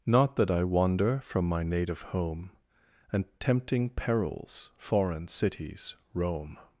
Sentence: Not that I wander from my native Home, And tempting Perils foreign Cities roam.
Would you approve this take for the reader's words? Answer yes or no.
yes